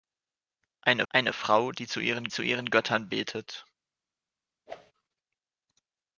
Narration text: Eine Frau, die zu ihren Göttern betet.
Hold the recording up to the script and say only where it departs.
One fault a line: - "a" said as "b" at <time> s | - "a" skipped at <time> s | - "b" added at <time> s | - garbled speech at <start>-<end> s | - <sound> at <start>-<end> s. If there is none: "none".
- "eine" added at 1.1 s
- "zu ihren" added at 2.3 s
- whoosh at 4.7-4.9 s